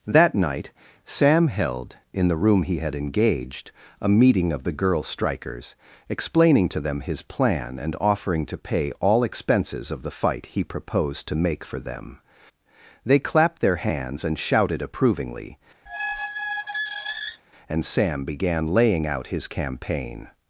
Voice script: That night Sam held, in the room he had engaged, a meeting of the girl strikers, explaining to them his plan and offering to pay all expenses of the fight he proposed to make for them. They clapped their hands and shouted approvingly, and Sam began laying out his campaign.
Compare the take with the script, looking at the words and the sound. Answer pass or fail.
fail